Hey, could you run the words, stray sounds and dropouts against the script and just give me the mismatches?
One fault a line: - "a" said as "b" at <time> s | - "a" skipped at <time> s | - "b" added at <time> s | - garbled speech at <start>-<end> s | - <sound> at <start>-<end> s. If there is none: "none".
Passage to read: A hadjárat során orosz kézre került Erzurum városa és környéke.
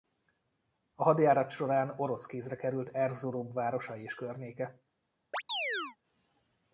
- chirp at 5.3-6.0 s